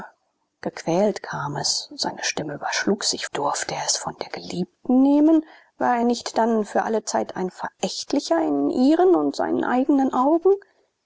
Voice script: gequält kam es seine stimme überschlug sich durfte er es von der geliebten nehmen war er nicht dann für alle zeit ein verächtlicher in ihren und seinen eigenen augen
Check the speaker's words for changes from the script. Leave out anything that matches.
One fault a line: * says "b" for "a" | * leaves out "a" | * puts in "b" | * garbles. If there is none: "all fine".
all fine